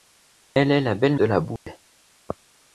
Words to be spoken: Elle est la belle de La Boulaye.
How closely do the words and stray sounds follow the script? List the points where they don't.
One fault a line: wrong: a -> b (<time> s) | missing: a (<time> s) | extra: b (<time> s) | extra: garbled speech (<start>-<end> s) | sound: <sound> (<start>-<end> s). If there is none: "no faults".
sound: dropout (1.6-1.7 s)